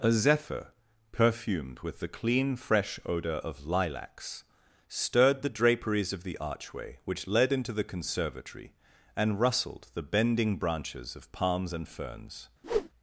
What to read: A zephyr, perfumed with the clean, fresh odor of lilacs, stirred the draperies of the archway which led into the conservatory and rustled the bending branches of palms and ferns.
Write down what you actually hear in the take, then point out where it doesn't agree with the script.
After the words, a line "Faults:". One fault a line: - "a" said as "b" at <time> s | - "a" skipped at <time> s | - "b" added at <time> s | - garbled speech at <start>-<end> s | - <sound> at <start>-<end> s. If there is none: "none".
A zephyr, perfumed with the clean, fresh odor of lilacs, stirred the draperies of the archway which led into the conservatory and rustled the bending branches of palms and ferns.
Faults:
- whoosh at 12.6-12.9 s